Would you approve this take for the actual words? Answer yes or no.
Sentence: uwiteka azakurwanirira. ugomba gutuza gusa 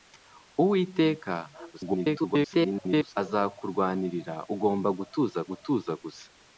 no